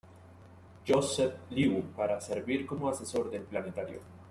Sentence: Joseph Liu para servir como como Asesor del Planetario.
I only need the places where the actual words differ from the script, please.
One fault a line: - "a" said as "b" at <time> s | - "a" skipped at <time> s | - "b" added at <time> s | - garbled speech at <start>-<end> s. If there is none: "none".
- "como" skipped at 2.9 s